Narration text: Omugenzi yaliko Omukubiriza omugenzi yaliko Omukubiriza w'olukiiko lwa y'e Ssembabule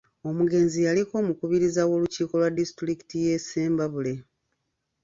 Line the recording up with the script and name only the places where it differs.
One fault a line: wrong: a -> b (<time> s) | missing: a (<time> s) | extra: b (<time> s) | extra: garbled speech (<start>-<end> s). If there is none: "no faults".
missing: omugenzi yaliko Omukubiriza (1.8 s)
extra: disitulikiti (2.6 s)